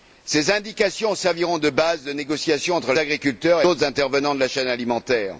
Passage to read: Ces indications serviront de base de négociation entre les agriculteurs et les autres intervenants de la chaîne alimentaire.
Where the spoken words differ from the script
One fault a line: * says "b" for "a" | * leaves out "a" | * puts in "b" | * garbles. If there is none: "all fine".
* leaves out "les"
* leaves out "les"